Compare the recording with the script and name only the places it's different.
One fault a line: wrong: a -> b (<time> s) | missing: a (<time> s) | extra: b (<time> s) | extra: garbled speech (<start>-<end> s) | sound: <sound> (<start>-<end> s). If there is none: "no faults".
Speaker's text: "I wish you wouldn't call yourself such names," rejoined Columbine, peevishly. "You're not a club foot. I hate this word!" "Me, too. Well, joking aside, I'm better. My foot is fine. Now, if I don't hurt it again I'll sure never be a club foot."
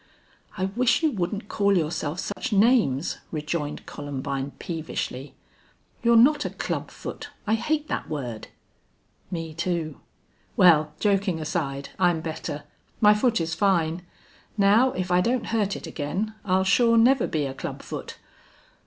sound: dropout (2.3-2.4 s)
wrong: this -> that (7.9 s)